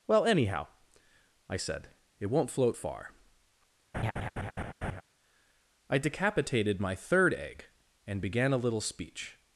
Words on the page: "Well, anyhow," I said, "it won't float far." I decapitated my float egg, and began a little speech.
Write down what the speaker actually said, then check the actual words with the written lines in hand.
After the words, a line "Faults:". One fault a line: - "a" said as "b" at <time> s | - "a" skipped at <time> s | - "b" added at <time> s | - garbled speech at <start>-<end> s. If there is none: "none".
"Well, anyhow," I said, "it won't float far." I decapitated my third egg, and began a little speech.
Faults:
- "float" said as "third" at 7.0 s